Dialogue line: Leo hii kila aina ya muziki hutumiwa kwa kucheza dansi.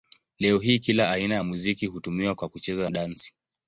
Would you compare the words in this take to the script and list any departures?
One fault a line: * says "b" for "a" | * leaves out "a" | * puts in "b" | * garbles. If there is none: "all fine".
all fine